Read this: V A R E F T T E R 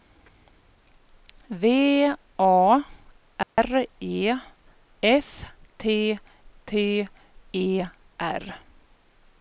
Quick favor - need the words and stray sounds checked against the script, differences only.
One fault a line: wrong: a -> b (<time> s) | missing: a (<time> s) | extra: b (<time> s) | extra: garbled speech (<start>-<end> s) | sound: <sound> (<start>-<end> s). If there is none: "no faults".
sound: dropout (3.4-3.6 s)